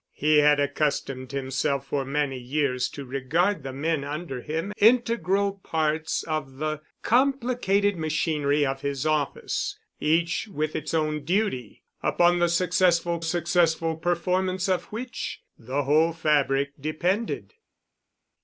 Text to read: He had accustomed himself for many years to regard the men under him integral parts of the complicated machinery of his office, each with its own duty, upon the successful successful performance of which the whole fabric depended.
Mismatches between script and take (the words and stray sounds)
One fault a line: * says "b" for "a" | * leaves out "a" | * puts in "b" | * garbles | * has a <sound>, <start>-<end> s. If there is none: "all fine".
all fine